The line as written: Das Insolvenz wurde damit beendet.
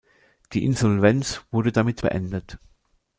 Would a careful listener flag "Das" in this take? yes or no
yes